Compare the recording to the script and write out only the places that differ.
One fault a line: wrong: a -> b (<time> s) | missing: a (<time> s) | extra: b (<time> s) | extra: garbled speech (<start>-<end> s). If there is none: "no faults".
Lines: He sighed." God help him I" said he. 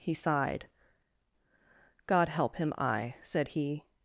no faults